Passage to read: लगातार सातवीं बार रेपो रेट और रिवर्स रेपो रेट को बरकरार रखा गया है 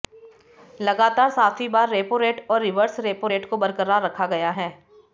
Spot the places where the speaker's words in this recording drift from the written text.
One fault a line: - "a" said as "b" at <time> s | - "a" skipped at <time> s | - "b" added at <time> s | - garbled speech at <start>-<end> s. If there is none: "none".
none